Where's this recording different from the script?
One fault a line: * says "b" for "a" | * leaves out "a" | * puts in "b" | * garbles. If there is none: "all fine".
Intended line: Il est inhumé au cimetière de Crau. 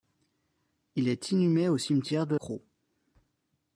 all fine